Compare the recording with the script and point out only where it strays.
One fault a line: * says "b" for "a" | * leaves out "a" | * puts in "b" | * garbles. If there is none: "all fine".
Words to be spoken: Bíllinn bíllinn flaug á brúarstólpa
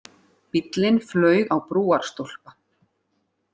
* leaves out "bíllinn"